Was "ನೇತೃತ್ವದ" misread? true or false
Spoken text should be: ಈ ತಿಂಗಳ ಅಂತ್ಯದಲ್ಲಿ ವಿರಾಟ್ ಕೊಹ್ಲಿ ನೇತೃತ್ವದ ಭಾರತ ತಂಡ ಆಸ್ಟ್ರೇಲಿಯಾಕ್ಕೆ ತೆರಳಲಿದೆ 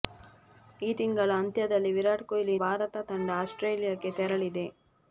true